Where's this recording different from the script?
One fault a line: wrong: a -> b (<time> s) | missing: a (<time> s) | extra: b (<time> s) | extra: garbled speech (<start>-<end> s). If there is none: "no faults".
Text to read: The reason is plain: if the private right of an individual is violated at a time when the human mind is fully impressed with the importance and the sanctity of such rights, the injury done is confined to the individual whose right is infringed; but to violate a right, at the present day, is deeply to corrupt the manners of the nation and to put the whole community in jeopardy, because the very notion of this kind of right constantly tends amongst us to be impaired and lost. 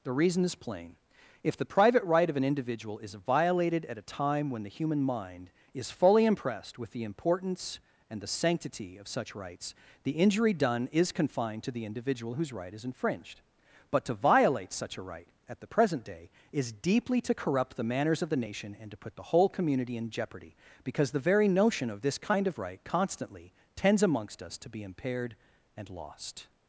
extra: such (14.7 s)